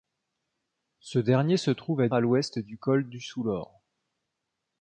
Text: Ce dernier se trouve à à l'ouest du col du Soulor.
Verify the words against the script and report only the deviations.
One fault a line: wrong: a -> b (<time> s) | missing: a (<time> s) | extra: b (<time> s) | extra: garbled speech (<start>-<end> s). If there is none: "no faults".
no faults